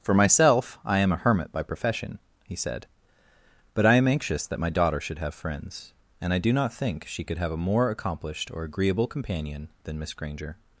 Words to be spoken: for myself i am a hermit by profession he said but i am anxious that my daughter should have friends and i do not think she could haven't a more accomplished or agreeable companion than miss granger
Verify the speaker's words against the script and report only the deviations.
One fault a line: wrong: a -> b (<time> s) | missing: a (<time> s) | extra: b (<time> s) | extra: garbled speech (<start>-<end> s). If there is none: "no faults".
wrong: haven't -> have (7.4 s)